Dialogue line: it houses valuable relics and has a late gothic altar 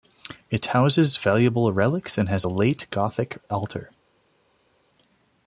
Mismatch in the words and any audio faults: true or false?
false